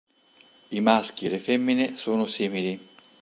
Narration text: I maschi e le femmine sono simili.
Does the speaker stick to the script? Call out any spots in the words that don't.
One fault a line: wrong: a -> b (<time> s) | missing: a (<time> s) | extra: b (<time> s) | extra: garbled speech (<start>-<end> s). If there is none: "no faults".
no faults